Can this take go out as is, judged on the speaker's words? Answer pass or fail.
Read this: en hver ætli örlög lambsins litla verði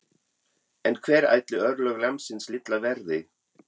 pass